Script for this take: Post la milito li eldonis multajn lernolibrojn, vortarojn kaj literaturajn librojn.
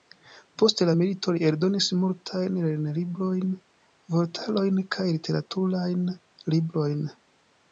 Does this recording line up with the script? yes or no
yes